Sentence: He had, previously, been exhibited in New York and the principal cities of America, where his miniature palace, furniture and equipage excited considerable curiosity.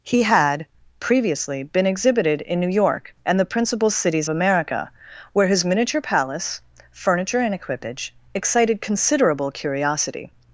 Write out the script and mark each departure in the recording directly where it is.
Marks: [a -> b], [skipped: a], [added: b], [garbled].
He had, previously, been exhibited in New York and the principal cities [skipped: of] America, where his miniature palace, furniture and equipage excited considerable curiosity.